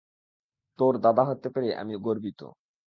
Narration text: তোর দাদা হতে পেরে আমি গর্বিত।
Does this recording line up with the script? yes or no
yes